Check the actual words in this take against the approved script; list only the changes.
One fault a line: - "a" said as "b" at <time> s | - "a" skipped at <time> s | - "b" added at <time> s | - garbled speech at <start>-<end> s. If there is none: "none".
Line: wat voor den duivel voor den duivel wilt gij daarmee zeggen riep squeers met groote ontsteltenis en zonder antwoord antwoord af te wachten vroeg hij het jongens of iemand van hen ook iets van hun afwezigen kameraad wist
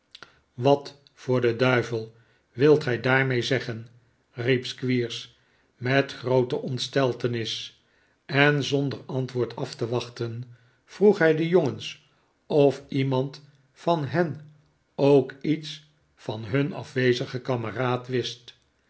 - "voor den duivel" skipped at 2.1 s
- "antwoord" skipped at 9.6 s
- "het" said as "de" at 11.3 s